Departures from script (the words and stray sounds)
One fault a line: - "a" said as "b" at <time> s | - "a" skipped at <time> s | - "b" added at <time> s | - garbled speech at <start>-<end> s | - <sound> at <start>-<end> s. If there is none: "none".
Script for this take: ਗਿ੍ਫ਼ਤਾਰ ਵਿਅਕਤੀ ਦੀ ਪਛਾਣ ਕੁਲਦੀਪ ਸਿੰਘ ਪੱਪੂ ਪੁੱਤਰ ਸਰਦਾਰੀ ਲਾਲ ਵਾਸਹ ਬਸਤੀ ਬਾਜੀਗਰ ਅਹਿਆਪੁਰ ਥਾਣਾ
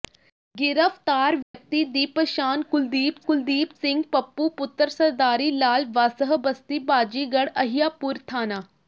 - dropout at 1.4-1.5 s
- "ਕੁਲਦੀਪ" added at 3.3 s